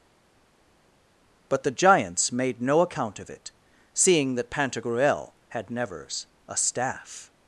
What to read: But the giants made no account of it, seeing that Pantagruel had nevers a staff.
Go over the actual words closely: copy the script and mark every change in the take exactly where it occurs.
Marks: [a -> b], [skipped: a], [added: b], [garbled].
But the giants made no account of it, seeing that Pantagruel had nevers a staff.